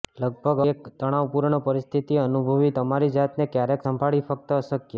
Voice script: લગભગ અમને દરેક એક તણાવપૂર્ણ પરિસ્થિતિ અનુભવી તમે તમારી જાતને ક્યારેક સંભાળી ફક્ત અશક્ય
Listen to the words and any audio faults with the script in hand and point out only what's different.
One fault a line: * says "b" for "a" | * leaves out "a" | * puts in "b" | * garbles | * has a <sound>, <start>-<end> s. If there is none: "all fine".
* leaves out "અમને દરેક"
* leaves out "તમે"